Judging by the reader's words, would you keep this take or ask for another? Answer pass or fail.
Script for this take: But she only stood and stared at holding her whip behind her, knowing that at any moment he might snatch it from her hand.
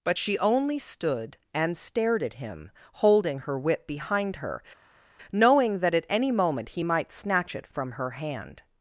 fail